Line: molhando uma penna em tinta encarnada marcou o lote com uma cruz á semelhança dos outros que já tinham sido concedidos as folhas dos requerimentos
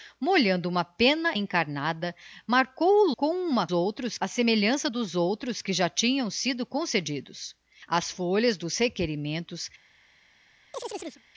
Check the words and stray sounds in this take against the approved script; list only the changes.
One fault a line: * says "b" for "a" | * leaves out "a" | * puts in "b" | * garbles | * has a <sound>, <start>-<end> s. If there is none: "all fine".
* leaves out "em tinta"
* leaves out "lote"
* says "outros" for "cruz"
* has a chirp, 10.7-11.2 s